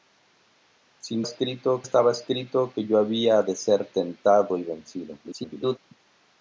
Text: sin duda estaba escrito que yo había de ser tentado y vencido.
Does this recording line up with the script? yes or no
no